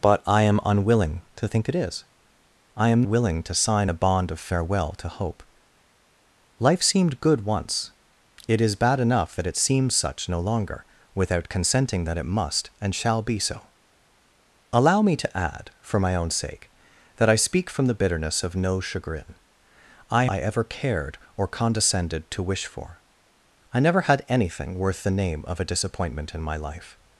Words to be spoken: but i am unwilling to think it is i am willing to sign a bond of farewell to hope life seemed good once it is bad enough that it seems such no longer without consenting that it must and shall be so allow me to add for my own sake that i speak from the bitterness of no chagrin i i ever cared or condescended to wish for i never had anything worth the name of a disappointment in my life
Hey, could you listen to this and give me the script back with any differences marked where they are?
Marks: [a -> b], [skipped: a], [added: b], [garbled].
but i am unwilling to think it is i am willing to sign a bond of farewell to hope life seemed good once it is bad enough that it seems such no longer without consenting that it must and shall be so allow me to add for my own sake that i speak from the bitterness of no chagrin i i ever cared or condescended to wish for i never had anything worth the name of a disappointment in my life